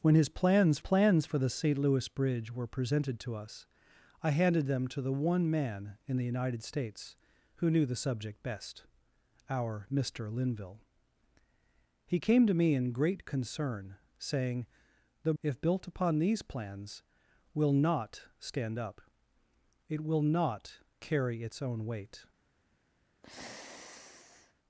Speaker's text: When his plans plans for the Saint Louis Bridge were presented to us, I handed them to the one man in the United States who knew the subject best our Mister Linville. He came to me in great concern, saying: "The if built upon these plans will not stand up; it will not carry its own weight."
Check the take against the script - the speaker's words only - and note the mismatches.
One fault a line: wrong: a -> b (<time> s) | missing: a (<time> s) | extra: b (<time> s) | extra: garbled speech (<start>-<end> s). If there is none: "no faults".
no faults